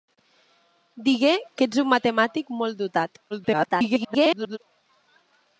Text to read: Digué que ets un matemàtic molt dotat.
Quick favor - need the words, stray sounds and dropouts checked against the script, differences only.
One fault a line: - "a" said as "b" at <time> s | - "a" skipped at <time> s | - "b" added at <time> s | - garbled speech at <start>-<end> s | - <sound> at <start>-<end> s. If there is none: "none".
- garbled speech at 3.3-4.6 s